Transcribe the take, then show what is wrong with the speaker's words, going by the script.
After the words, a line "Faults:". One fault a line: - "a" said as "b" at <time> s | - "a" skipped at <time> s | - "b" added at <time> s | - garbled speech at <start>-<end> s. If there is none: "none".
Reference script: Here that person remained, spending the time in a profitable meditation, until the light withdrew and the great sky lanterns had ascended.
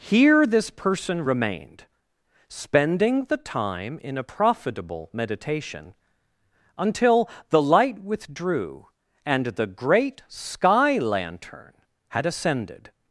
Here this person remained, spending the time in a profitable meditation, until the light withdrew and the great sky lantern had ascended.
Faults:
- "that" said as "this" at 0.5 s
- "lanterns" said as "lantern" at 11.0 s